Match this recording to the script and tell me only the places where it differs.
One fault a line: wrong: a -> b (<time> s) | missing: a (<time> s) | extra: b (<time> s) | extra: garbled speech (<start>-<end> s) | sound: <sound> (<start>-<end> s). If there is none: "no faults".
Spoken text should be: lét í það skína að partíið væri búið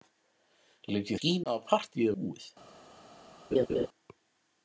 missing: það (1.2 s)
missing: væri (2.1 s)
sound: laugh (3.5-3.9 s)